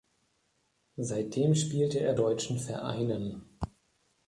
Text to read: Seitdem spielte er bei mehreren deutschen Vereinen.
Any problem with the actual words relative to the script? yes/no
yes